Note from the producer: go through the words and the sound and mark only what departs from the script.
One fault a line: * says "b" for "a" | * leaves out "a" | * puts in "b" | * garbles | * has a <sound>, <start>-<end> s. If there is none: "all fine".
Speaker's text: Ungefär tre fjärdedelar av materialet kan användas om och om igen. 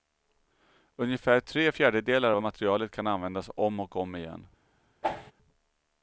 * has a whoosh, 5.0-5.3 s